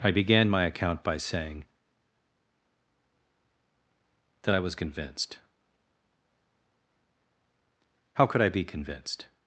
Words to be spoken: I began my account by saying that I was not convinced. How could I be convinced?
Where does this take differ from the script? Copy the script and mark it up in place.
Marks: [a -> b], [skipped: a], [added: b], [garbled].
I began my account by saying that I was [skipped: not] convinced. How could I be convinced?